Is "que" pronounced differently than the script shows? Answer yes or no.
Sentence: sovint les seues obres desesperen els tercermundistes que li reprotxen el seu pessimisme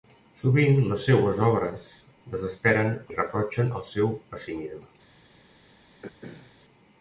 yes